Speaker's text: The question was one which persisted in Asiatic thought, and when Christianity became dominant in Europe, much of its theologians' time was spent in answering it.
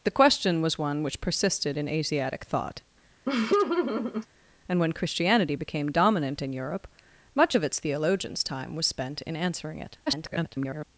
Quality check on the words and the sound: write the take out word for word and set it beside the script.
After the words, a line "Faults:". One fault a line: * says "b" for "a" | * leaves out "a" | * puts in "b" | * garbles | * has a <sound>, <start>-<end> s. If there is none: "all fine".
The question was one which persisted in Asiatic thought, and when Christianity became dominant in Europe, much of its theologians' time was spent in answering it. [garbled]
Faults:
* has a laugh, 3.3-4.3 s
* garbles